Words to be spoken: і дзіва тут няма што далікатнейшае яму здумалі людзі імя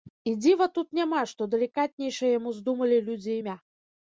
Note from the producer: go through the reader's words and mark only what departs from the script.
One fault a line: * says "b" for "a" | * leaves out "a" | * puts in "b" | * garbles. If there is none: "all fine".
all fine